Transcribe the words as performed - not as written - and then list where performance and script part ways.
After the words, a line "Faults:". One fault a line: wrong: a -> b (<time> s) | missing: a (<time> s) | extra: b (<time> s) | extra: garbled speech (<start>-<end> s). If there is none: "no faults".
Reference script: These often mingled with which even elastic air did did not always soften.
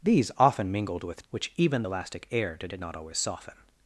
These often mingled with which even elastic air did did not always soften.
Faults:
no faults